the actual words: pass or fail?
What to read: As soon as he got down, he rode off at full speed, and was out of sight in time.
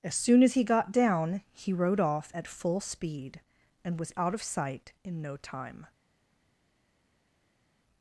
fail